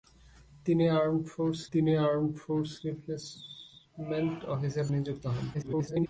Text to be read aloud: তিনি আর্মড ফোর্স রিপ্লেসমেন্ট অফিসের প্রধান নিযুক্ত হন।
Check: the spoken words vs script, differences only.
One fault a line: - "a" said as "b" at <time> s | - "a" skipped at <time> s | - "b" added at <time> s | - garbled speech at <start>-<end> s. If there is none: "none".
- "তিনি আর্মড ফোর্স" added at 1.7 s
- "প্রধান" skipped at 4.9 s
- garbled speech at 5.5-6.1 s